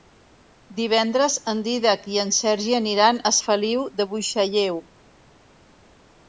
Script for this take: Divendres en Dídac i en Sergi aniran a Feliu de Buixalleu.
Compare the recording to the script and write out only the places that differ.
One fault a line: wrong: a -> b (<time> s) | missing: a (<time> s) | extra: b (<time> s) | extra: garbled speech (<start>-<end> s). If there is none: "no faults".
no faults